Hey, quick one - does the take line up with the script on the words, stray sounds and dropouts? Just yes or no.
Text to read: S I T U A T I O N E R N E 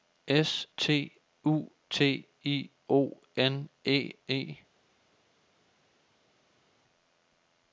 no